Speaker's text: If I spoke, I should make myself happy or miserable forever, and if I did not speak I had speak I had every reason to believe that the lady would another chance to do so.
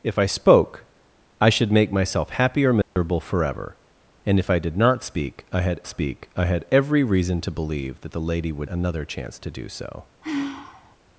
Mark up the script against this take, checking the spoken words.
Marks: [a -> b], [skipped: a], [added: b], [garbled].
If I spoke, I should make myself happy or miserable forever, and if I did not speak I had speak I had every reason to believe that the lady would another chance to do so.